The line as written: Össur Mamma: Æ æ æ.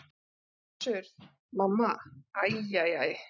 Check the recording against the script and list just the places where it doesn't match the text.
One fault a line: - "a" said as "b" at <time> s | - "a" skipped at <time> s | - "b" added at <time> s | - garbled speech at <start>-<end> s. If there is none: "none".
none